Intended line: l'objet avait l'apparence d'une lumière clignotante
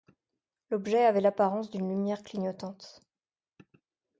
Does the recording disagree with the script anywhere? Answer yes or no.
no